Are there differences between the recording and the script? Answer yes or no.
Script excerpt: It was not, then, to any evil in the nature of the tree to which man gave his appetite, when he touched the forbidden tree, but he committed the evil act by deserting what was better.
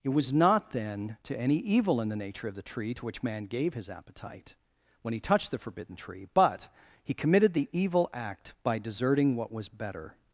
no